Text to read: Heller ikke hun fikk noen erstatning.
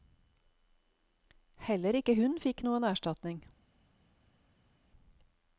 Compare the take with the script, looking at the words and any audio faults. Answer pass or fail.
pass